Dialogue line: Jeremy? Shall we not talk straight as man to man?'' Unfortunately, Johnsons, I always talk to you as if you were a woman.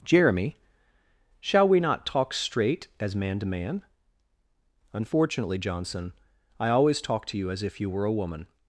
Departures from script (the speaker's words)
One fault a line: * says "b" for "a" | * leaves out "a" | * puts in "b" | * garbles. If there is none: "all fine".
* says "Johnson" for "Johnsons"